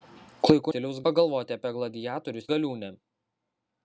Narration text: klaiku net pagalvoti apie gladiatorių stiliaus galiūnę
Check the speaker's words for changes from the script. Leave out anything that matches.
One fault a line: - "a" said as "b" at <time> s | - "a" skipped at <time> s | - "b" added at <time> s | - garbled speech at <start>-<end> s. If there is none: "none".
- "net" said as "stiliaus" at 0.7 s
- "stiliaus" skipped at 2.4 s